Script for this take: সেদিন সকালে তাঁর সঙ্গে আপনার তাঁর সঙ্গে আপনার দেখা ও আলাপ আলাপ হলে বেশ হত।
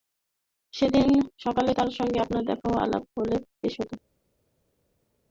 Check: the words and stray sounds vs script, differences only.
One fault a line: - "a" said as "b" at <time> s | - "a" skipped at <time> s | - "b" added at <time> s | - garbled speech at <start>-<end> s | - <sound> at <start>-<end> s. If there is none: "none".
- "তাঁর সঙ্গে আপনার" skipped at 2.4 s
- "আলাপ" skipped at 3.0 s